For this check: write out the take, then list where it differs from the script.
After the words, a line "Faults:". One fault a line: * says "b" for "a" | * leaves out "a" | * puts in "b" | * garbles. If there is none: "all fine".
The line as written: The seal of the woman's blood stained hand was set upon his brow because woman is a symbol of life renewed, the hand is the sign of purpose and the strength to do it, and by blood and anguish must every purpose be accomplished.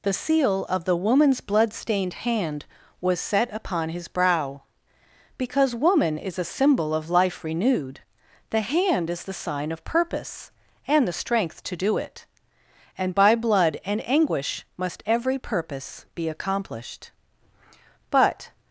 The seal of the woman's blood stained hand was set upon his brow because woman is a symbol of life renewed, the hand is the sign of purpose and the strength to do it, and by blood and anguish must every purpose be accomplished. But
Faults:
* puts in "But"